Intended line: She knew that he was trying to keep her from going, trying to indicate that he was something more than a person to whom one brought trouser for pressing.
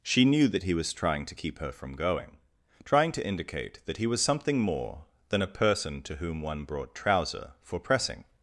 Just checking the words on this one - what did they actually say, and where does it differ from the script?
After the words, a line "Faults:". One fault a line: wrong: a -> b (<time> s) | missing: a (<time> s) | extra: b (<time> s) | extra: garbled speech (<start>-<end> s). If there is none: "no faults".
She knew that he was trying to keep her from going, trying to indicate that he was something more than a person to whom one brought trouser for pressing.
Faults:
no faults